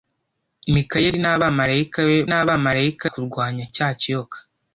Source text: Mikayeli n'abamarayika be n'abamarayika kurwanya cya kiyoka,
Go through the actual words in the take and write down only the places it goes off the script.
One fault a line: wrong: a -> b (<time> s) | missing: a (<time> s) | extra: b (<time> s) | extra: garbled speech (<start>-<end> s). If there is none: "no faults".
no faults